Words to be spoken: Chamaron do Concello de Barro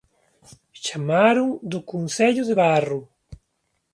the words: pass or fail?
pass